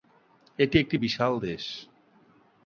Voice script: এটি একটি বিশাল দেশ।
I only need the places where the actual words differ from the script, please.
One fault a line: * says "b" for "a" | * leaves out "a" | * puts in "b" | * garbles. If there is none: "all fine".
all fine